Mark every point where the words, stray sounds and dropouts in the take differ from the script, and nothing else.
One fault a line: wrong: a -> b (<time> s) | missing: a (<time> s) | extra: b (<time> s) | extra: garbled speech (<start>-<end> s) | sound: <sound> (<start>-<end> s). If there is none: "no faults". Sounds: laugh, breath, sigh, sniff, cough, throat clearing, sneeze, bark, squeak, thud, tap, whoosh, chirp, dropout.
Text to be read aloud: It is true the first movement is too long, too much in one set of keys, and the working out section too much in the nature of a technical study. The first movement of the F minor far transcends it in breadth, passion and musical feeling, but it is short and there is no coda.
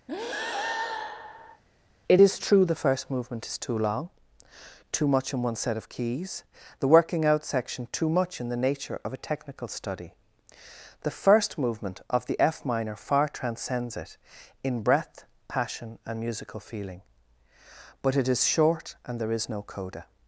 sound: breath (0.1-1.6 s)
missing: and (6.4 s)